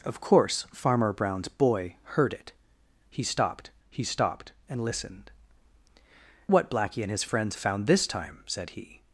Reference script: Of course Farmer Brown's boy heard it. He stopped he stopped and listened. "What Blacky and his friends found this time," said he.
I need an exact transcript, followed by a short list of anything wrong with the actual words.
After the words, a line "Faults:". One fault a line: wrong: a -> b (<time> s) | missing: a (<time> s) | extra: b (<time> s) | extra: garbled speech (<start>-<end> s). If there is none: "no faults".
Of course Farmer Brown's boy heard it. He stopped he stopped and listened. "What Blacky and his friends found this time," said he.
Faults:
no faults